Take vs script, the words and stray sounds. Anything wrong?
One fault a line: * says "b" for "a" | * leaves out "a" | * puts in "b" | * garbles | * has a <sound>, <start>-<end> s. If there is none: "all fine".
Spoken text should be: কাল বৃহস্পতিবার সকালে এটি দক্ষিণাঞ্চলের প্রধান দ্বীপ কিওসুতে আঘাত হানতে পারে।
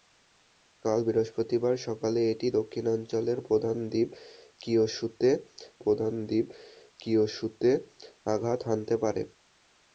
* puts in "প্রধান দ্বীপ কিওসুতে"